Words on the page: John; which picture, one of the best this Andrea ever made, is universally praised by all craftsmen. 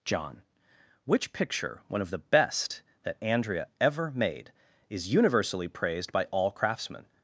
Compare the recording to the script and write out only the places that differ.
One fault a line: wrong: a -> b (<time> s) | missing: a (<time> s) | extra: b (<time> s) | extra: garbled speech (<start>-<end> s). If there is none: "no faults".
wrong: this -> that (3.0 s)